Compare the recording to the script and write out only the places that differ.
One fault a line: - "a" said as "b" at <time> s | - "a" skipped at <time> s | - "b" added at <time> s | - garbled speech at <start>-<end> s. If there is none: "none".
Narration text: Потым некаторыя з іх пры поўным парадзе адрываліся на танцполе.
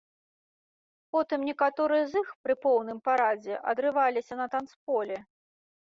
none